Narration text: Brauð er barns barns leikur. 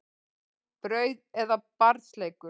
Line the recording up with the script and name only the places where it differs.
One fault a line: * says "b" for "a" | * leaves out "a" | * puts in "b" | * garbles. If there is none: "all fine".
* leaves out "barns"